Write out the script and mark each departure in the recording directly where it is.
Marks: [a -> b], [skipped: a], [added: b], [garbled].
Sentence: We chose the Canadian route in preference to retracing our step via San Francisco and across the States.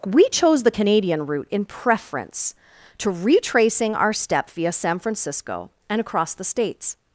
We chose the Canadian route in preference to retracing our step via San Francisco and across the States.